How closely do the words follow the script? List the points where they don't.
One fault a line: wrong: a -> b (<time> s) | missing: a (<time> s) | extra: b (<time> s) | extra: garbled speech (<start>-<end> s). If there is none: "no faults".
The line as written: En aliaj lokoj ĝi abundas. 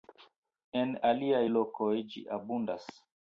no faults